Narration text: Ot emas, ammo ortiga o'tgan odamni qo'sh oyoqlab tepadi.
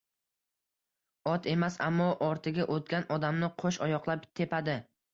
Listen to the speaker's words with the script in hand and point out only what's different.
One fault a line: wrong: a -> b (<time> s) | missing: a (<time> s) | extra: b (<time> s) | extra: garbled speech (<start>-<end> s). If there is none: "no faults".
no faults